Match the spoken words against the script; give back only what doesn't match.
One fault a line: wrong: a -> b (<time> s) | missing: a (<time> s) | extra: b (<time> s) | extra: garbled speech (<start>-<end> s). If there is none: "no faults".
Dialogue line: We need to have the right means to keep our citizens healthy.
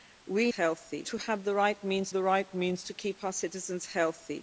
wrong: need -> healthy (0.6 s)
extra: the right means (2.1 s)